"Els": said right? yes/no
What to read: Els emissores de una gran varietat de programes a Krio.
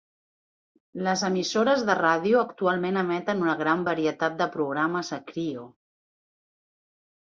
no